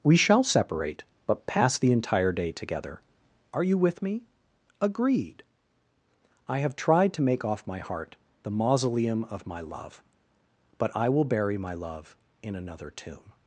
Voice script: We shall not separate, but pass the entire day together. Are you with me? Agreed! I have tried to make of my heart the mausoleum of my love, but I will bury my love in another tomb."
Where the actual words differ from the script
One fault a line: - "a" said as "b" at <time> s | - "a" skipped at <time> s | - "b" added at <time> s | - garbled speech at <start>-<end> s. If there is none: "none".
- "not" skipped at 0.4 s
- "of" said as "off" at 7.4 s